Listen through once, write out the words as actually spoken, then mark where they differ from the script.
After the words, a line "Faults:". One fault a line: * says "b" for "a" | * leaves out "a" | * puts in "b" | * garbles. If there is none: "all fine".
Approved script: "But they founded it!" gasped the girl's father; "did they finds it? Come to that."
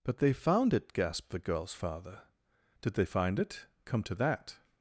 "But they found it!" gasped the girl's father; "did they find it? Come to that."
Faults:
* says "found" for "founded"
* says "find" for "finds"